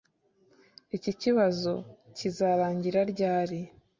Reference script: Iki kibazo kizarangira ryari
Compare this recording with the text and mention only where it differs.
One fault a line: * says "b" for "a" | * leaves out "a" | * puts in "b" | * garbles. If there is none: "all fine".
all fine